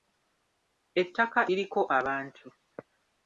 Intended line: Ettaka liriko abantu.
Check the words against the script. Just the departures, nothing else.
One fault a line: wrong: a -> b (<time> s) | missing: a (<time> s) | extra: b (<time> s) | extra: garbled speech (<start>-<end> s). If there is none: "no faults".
no faults